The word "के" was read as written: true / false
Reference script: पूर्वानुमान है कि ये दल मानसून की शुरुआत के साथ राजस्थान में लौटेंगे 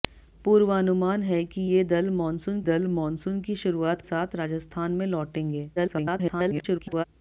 false